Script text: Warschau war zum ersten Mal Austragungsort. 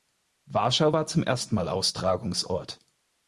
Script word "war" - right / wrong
right